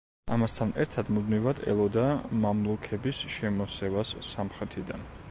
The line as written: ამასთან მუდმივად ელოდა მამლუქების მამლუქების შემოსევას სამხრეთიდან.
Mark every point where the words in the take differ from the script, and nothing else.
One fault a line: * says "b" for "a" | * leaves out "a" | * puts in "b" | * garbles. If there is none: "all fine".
* puts in "ერთად"
* leaves out "მამლუქების"